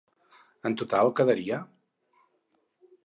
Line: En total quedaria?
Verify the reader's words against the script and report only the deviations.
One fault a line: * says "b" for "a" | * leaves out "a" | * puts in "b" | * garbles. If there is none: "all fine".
all fine